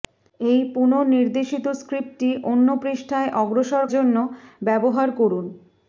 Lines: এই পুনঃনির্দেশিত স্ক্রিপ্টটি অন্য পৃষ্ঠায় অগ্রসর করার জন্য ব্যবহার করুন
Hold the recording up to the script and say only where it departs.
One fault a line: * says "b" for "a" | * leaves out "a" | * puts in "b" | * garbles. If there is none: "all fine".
* leaves out "করার"